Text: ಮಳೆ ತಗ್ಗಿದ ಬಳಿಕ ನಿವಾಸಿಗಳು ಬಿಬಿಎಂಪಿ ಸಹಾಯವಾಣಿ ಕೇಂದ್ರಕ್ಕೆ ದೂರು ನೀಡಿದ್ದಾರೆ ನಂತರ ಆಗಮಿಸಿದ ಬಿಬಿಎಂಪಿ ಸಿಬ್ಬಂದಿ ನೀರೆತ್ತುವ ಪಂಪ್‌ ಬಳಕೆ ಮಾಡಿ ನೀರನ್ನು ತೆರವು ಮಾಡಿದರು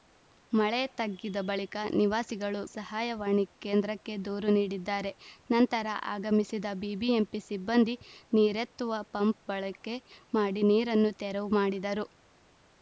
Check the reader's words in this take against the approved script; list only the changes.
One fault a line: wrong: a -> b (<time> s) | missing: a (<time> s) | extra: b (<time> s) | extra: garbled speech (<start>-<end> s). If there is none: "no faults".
missing: ಬಿಬಿಎಂಪಿ (2.6 s)